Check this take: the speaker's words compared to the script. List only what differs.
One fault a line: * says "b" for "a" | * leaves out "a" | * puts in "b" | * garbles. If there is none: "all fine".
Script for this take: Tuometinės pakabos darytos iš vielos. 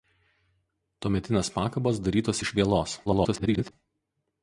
* garbles